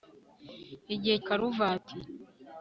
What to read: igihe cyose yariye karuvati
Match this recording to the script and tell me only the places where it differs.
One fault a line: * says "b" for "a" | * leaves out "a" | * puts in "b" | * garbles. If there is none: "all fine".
* leaves out "cyose yariye"